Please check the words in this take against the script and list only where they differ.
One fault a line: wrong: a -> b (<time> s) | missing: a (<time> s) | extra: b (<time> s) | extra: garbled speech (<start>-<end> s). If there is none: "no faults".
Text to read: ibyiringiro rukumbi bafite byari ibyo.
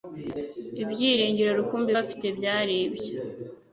no faults